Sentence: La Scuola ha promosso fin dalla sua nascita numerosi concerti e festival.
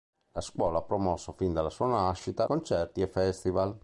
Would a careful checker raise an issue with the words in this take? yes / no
yes